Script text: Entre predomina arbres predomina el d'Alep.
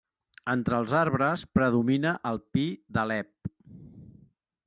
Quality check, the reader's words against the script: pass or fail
fail